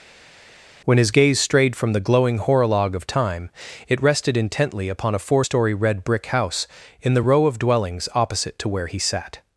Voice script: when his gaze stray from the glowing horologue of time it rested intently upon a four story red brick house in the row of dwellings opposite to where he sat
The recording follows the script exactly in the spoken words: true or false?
false